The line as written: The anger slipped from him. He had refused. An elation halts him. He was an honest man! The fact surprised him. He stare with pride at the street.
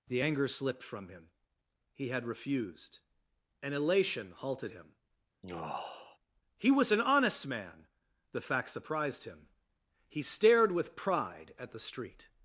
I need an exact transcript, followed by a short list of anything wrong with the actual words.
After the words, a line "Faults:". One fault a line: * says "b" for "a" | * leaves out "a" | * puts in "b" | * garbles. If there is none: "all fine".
The anger slipped from him. He had refused. An elation halted him. He was an honest man! The fact surprised him. He stared with pride at the street.
Faults:
* says "halted" for "halts"
* says "stared" for "stare"